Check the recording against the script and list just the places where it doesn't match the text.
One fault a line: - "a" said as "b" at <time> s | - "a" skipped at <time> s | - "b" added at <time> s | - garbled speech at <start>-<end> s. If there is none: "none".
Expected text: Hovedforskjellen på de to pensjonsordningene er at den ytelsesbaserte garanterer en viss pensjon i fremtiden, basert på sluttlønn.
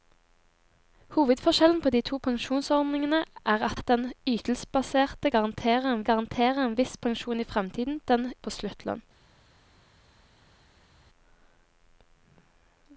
- "at" added at 3.7 s
- "garanterer en" added at 6.1 s
- "basert" said as "den" at 8.1 s